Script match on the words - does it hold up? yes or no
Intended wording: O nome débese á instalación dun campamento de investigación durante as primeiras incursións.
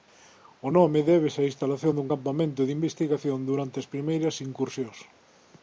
yes